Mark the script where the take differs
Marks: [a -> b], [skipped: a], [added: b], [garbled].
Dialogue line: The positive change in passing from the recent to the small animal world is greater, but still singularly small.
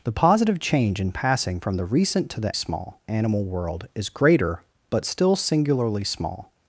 The positive change in passing from the recent to the small animal world is greater, but still singularly small.